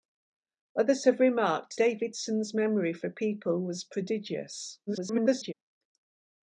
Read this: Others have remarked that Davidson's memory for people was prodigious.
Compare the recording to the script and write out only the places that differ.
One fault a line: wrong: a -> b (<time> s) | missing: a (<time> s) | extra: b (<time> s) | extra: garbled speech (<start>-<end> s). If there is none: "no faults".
missing: that (1.8 s)
extra: garbled speech (4.9-5.5 s)